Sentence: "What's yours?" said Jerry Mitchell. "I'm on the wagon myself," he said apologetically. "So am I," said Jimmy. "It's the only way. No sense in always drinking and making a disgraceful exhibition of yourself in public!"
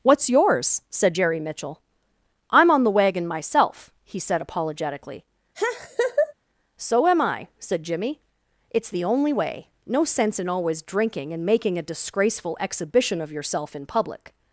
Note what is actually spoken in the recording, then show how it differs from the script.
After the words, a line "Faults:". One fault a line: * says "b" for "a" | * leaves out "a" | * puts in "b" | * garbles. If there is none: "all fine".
"What's yours?" said Jerry Mitchell. "I'm on the wagon myself," he said apologetically. "So am I," said Jimmy. "It's the only way. No sense in always drinking and making a disgraceful exhibition of yourself in public!"
Faults:
all fine